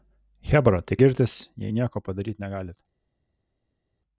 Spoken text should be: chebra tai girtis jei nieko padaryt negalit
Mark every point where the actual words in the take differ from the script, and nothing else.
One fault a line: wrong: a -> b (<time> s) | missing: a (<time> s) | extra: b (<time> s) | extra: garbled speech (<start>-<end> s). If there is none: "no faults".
no faults